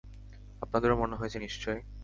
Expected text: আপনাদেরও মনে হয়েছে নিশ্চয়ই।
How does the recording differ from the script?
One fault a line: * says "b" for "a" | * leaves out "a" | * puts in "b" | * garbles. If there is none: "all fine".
all fine